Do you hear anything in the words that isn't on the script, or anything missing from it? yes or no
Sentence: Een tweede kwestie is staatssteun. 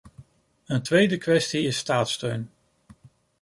no